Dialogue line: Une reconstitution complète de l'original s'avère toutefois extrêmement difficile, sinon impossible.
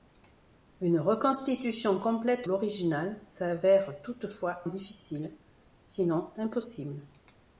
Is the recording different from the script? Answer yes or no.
yes